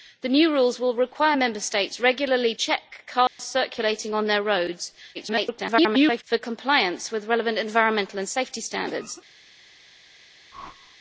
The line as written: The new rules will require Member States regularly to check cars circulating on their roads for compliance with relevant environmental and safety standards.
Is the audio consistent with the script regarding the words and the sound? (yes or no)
no